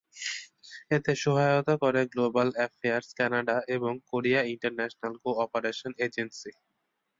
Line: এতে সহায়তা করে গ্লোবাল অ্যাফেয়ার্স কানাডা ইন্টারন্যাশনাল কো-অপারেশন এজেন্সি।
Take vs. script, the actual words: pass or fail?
fail